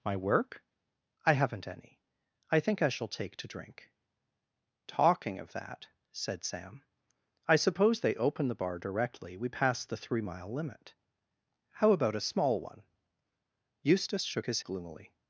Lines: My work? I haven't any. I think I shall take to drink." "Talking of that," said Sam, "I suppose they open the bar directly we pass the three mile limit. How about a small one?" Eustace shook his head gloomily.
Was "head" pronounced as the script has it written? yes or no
no